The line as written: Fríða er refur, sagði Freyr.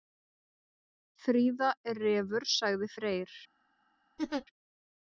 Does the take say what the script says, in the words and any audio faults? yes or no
no